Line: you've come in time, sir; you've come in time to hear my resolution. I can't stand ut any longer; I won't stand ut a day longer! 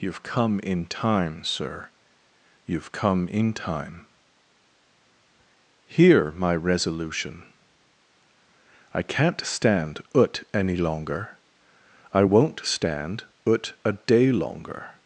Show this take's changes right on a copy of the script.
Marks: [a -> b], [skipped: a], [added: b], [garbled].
you've come in time, sir; you've come in time [skipped: to] hear my resolution. I can't stand ut any longer; I won't stand ut a day longer!